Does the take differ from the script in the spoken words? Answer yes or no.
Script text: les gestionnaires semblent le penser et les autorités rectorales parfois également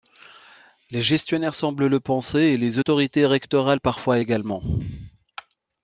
no